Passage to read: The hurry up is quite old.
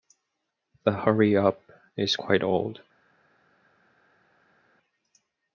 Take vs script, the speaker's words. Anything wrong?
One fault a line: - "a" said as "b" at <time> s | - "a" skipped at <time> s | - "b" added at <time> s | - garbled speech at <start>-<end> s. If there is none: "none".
none